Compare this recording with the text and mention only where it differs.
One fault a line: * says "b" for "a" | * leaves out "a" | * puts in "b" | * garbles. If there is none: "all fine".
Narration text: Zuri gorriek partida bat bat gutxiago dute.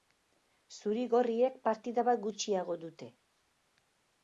* leaves out "bat"